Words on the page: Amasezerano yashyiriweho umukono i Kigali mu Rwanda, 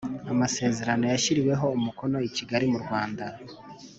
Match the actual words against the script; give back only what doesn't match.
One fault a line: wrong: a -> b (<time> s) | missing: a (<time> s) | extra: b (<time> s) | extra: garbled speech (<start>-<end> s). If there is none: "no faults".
no faults